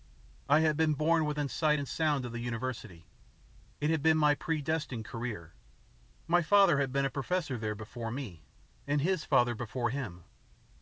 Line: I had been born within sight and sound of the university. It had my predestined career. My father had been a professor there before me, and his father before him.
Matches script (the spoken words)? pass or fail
fail